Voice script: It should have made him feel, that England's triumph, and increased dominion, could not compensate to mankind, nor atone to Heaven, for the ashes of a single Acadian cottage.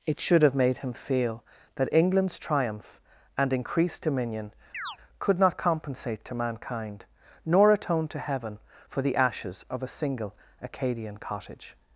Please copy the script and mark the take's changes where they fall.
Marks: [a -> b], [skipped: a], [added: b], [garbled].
It should have made him feel, that England's triumph, and increased dominion, could not compensate to mankind, nor atone to Heaven, for the ashes of a single Acadian cottage.